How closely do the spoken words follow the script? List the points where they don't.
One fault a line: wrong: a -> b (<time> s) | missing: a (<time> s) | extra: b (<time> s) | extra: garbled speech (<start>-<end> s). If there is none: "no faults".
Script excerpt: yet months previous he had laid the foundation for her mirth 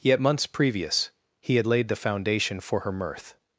no faults